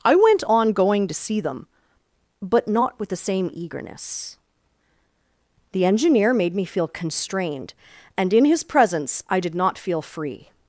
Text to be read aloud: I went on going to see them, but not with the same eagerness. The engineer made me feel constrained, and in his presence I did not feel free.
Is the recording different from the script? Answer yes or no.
no